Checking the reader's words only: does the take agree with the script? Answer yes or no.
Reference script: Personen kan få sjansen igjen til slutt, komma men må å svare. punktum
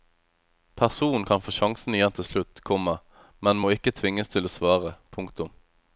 no